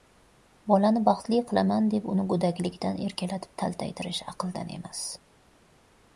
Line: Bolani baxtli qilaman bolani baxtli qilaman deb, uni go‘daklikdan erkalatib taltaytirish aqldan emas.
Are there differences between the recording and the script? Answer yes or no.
yes